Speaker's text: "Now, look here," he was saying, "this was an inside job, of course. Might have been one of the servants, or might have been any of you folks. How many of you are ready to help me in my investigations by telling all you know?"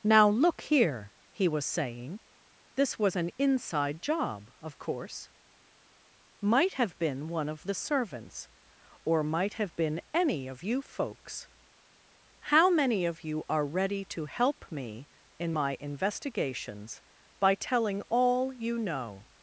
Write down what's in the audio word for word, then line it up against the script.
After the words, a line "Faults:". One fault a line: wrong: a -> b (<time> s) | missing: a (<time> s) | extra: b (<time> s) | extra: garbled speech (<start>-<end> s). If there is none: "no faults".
"Now, look here," he was saying, "this was an inside job, of course. Might have been one of the servants, or might have been any of you folks. How many of you are ready to help me in my investigations by telling all you know?"
Faults:
no faults